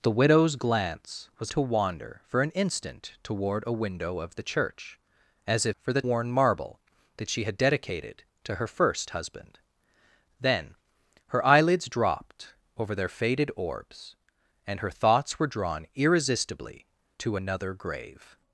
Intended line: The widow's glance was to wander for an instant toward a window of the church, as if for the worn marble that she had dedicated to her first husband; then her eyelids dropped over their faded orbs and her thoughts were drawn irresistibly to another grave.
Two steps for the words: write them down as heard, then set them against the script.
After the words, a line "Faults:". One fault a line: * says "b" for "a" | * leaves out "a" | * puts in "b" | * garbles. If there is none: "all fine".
The widow's glance was to wander for an instant toward a window of the church, as if for the worn marble that she had dedicated to her first husband; then her eyelids dropped over their faded orbs and her thoughts were drawn irresistibly to another grave.
Faults:
all fine